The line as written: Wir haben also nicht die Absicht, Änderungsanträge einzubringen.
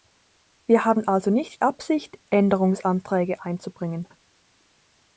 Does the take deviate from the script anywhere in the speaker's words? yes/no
yes